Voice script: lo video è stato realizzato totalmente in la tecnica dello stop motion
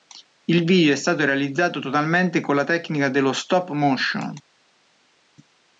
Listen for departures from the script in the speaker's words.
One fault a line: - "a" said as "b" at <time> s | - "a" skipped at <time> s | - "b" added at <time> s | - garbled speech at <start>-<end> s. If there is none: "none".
- "lo" said as "il" at 0.5 s
- "in" said as "con" at 2.4 s